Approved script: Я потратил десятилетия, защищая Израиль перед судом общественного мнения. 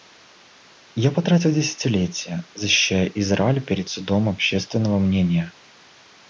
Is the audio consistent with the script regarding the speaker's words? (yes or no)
yes